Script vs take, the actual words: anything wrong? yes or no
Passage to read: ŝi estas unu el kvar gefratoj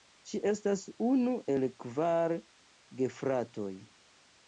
no